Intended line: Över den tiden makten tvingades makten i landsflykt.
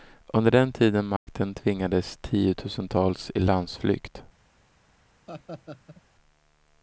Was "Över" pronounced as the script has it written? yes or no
no